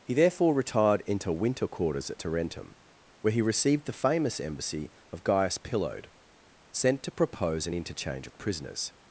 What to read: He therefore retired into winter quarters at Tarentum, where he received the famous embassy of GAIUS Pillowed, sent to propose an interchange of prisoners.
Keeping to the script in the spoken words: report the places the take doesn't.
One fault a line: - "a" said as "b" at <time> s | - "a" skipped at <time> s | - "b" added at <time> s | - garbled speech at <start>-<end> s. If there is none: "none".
none